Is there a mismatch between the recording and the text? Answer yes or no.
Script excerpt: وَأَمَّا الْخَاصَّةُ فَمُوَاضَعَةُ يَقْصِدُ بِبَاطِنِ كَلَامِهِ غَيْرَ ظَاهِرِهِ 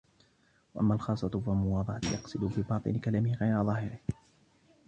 no